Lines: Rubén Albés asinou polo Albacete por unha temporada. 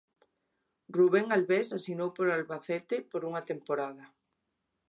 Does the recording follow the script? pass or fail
pass